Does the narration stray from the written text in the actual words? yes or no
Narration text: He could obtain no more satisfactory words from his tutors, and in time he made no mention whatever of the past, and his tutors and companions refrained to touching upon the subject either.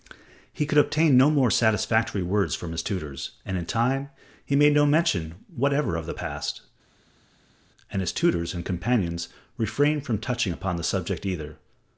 yes